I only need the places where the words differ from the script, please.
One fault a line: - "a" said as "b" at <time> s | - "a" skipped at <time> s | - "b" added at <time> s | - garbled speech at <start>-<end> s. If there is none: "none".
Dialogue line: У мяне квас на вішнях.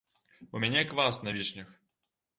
none